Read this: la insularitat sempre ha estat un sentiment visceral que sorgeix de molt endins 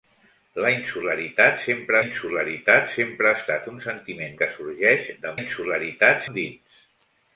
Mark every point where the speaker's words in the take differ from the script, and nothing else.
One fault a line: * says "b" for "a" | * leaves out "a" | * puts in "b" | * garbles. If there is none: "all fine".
* puts in "insularitat sempre"
* leaves out "visceral"
* says "insularitat" for "molt"